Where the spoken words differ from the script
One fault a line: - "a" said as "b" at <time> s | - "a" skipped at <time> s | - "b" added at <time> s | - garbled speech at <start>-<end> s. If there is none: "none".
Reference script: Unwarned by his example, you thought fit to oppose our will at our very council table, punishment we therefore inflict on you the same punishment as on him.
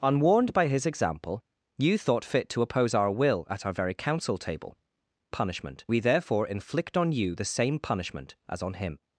none